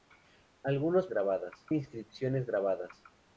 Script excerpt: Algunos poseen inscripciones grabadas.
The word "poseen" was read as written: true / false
false